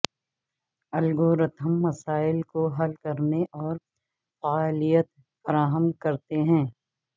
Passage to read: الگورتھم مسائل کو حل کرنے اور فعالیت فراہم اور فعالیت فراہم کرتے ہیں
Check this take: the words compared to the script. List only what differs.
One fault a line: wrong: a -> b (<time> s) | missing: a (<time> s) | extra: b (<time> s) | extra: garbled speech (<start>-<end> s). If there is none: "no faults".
missing: اور فعالیت فراہم (5.9 s)